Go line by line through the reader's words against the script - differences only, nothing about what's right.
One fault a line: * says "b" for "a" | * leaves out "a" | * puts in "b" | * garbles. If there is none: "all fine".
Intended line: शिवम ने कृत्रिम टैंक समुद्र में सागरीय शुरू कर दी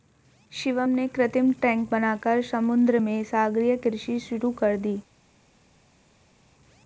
* puts in "बनाकर"
* puts in "कृषि"